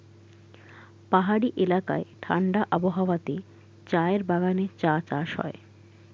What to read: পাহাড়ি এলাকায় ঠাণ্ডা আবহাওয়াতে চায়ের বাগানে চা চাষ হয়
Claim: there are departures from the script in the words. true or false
false